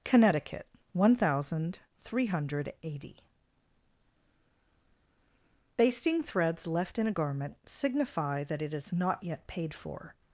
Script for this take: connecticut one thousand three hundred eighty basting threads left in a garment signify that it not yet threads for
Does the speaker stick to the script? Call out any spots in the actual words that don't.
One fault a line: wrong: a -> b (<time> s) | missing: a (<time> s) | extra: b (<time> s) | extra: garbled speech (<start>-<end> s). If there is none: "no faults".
extra: is (8.7 s)
wrong: threads -> paid (9.5 s)